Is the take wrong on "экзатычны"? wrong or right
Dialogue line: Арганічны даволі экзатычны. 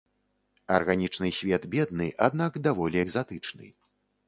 right